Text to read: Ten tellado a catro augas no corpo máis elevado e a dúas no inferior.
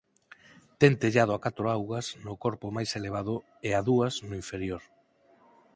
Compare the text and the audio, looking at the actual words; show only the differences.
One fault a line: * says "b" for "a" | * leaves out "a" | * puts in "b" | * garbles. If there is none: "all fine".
all fine